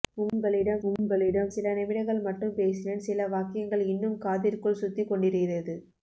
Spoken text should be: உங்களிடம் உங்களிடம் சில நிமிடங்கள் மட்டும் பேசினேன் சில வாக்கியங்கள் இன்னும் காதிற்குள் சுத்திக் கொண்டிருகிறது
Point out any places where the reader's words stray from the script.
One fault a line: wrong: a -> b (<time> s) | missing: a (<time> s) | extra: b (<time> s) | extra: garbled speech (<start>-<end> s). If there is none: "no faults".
no faults